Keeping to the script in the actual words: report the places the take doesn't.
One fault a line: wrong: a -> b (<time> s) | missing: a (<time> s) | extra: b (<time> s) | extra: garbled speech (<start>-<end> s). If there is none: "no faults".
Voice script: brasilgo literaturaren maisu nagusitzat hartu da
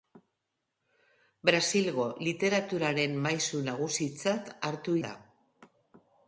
no faults